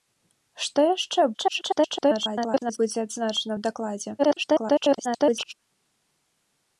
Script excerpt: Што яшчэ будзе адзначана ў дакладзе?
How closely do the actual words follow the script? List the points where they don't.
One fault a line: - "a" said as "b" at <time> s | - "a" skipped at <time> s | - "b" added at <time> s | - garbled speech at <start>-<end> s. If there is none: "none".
- garbled speech at 1.3-2.8 s
- garbled speech at 4.2-5.5 s